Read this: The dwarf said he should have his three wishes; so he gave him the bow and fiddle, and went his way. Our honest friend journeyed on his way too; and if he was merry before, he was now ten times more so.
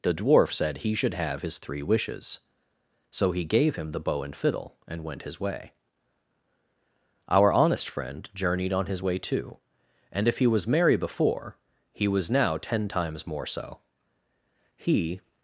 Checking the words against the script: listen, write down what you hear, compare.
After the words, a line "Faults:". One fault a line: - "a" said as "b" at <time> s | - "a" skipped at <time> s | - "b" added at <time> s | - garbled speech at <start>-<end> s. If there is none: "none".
The dwarf said he should have his three wishes; so he gave him the bow and fiddle, and went his way. Our honest friend journeyed on his way too; and if he was merry before, he was now ten times more so. He
Faults:
- "He" added at 14.8 s